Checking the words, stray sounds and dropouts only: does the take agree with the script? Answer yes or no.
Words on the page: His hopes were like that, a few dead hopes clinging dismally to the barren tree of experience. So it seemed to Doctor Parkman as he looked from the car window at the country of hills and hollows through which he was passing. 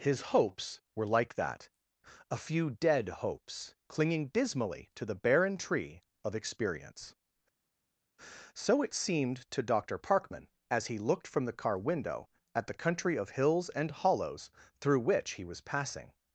yes